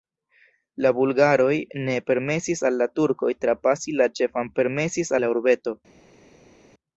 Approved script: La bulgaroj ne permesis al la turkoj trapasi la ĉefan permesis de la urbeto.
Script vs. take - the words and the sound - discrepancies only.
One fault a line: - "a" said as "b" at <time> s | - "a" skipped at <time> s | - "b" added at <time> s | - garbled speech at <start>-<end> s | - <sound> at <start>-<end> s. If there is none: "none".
none